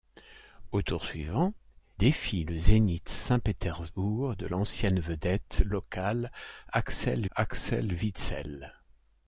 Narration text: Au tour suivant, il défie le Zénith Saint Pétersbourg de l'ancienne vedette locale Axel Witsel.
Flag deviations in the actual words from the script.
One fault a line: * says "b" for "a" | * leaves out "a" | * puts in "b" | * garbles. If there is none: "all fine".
* leaves out "il"
* puts in "Axel"